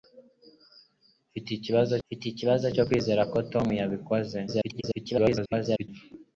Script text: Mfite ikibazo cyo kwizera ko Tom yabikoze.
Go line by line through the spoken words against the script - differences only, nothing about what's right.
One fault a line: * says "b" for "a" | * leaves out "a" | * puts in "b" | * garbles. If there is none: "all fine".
* puts in "mfite ikibazo"
* garbles